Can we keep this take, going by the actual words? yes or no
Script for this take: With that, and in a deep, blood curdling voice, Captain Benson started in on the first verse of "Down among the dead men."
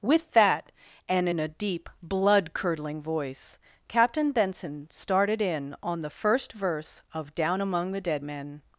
yes